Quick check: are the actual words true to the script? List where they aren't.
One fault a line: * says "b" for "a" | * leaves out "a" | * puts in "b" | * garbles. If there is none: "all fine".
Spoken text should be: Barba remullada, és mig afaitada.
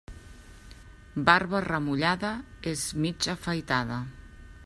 all fine